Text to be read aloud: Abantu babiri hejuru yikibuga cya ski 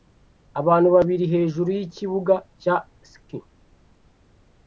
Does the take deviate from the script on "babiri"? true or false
false